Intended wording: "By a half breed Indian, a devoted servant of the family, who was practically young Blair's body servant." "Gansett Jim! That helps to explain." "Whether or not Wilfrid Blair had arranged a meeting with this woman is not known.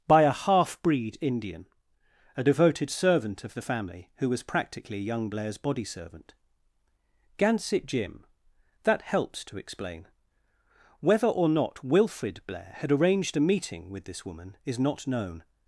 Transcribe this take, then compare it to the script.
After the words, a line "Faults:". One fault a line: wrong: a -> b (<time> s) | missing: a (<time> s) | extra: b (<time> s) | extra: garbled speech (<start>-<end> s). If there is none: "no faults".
"By a half breed Indian, a devoted servant of the family, who was practically young Blair's body servant." "Gansett Jim! That helps to explain." "Whether or not Wilfrid Blair had arranged a meeting with this woman is not known.
Faults:
no faults